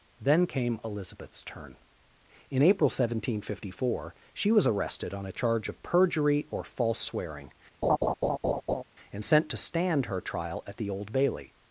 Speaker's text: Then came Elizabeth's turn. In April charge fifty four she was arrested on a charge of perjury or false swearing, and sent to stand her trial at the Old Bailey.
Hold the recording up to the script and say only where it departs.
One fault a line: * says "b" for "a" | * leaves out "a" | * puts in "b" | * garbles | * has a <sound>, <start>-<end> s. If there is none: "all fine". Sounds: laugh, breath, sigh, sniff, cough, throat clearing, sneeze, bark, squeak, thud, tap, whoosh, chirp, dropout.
* says "seventeen" for "charge"
* has a laugh, 7.8-8.8 s